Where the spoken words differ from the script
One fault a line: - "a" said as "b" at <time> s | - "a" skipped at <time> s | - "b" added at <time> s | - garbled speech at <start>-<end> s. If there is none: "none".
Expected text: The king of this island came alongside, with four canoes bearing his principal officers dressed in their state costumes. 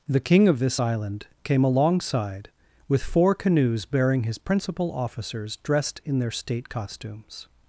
none